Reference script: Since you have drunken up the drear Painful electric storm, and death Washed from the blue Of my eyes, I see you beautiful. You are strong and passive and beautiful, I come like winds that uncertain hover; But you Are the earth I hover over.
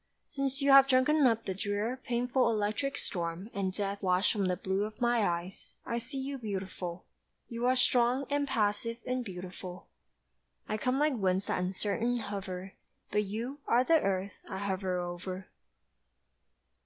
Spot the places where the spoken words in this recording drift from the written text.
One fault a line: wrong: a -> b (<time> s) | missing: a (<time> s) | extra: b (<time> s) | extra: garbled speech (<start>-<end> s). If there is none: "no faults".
no faults